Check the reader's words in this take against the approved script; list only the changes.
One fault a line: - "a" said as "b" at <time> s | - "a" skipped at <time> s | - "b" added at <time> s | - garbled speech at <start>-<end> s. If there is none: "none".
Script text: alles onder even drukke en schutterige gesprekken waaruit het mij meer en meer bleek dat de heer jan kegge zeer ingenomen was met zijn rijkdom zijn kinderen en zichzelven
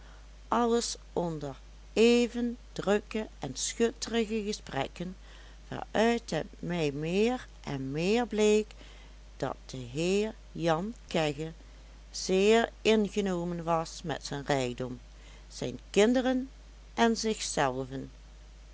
none